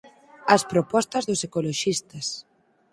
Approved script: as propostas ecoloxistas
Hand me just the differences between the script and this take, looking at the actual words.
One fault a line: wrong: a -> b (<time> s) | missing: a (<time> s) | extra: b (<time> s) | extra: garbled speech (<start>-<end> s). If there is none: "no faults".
extra: dos (1.3 s)